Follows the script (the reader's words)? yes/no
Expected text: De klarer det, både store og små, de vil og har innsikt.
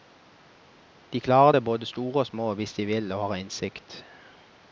no